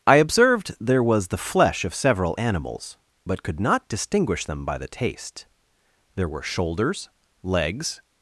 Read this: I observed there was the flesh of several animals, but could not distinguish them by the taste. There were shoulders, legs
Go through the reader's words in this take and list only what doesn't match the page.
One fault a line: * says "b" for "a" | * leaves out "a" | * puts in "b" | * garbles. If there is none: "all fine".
all fine